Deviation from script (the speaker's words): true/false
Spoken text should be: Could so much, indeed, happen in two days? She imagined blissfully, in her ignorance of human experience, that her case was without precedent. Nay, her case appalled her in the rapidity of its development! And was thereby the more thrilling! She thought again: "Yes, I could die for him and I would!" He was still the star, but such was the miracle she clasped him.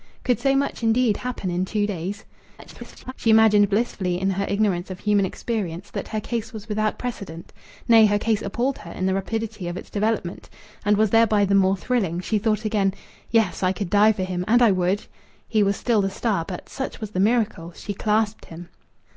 true